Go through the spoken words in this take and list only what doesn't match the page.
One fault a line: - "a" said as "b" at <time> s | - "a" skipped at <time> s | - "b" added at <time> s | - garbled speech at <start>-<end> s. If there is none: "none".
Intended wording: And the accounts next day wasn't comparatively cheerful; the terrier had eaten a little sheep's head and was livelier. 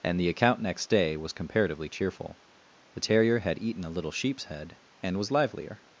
- "accounts" said as "account" at 0.3 s
- "wasn't" said as "was" at 1.2 s